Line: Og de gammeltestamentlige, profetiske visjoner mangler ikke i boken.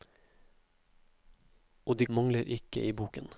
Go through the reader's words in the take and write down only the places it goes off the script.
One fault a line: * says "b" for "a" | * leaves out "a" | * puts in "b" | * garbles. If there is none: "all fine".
* leaves out "gammeltestamentlige profetiske visjoner"